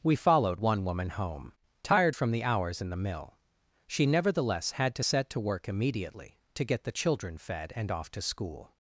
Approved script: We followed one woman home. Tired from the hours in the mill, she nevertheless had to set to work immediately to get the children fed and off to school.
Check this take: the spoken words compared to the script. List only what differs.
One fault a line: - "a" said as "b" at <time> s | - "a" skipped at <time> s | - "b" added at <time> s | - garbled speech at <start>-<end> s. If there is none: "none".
none